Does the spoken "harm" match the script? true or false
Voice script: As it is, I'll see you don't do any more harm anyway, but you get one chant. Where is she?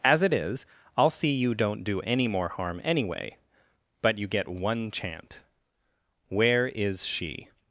true